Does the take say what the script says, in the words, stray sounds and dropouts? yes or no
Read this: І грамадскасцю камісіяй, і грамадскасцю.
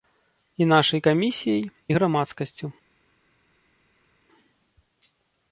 no